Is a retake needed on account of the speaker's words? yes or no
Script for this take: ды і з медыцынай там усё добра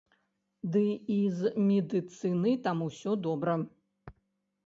no